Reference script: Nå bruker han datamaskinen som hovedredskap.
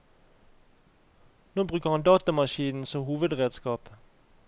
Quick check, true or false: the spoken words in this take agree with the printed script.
true